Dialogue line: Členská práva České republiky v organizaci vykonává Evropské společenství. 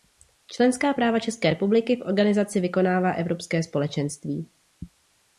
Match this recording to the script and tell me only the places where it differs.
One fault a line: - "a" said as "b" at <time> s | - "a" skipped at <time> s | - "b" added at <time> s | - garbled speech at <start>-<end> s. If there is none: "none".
none